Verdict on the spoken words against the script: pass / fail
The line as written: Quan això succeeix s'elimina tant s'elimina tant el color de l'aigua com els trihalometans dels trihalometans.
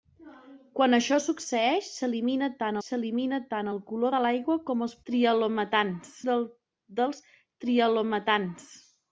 pass